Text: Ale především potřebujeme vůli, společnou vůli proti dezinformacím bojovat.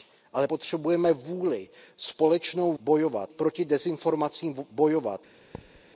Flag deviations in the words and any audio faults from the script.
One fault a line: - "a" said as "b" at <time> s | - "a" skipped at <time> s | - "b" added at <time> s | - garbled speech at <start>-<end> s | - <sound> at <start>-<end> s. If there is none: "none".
- "především" skipped at 0.5 s
- "vůli" said as "bojovat" at 2.8 s
- thud at 5.5-5.8 s